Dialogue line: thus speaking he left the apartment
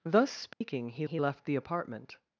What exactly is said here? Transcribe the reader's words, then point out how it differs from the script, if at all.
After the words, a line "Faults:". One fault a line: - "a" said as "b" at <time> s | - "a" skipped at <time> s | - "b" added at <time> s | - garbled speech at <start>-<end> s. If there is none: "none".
thus speaking he he left the apartment
Faults:
- "he" added at 1.0 s